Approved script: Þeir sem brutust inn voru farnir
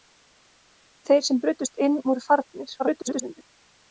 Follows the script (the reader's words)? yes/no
no